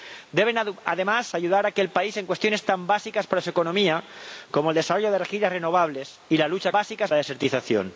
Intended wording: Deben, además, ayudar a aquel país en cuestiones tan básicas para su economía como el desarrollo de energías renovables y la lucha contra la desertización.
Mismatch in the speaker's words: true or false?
true